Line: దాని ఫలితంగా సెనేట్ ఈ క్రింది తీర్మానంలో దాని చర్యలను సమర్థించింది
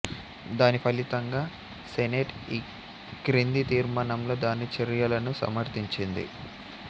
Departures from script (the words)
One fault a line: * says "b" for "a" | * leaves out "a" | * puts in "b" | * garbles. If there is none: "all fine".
all fine